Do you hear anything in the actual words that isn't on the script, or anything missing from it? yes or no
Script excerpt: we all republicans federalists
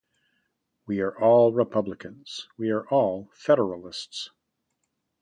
yes